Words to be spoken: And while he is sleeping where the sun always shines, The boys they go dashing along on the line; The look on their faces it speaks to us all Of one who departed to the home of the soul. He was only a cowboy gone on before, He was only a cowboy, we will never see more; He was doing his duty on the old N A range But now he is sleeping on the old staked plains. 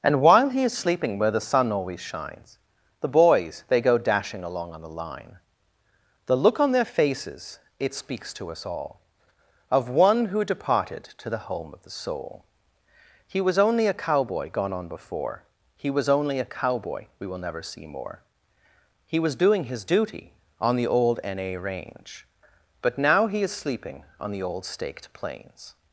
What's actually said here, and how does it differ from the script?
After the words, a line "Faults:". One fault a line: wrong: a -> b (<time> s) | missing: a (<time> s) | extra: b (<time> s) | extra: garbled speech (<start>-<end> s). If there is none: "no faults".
And while he is sleeping where the sun always shines, The boys they go dashing along on the line; The look on their faces it speaks to us all Of one who departed to the home of the soul. He was only a cowboy gone on before, He was only a cowboy, we will never see more; He was doing his duty on the old N A range But now he is sleeping on the old staked plains.
Faults:
no faults